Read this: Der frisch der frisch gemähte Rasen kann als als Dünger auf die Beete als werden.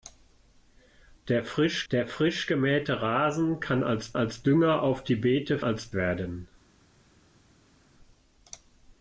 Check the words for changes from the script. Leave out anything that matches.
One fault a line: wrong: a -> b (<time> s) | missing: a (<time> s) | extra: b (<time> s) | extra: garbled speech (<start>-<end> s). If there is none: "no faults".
no faults